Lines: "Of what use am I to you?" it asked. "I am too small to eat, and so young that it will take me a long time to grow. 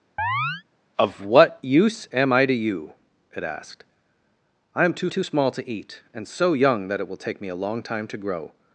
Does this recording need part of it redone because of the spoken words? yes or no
yes